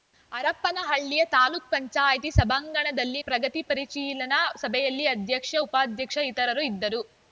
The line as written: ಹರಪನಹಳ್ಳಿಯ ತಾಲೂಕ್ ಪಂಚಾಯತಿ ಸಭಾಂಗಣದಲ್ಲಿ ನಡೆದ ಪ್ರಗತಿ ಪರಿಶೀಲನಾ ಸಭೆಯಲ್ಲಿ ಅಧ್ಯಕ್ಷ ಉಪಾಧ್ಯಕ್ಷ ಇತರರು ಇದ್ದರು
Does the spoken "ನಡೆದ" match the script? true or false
false